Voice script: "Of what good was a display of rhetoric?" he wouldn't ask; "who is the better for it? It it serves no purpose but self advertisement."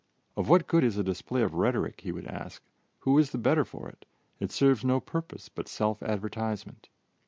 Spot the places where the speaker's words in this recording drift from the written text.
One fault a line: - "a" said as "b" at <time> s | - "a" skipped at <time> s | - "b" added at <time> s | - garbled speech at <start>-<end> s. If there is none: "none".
- "was" said as "is" at 0.8 s
- "wouldn't" said as "would" at 2.1 s
- "it" skipped at 4.5 s